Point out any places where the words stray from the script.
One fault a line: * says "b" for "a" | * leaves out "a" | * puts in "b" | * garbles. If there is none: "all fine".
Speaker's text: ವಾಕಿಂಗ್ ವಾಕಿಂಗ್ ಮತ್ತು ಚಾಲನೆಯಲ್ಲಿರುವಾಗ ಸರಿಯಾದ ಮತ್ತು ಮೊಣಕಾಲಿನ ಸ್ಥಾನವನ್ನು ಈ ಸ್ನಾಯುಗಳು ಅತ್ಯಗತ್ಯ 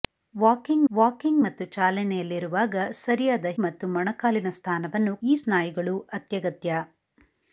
all fine